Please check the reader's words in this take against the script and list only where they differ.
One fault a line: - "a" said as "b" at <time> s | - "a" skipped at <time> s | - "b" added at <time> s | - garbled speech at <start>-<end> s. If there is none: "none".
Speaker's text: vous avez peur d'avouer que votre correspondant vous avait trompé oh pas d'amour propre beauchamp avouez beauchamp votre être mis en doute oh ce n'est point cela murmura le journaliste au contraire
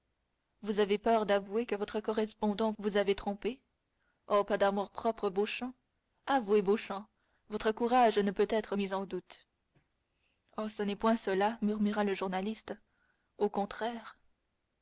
- "courage ne peut" added at 7.7 s